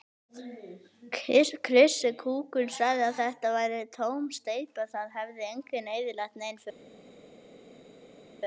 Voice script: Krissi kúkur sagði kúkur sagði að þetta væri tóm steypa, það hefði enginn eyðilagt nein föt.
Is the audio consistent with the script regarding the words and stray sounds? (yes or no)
no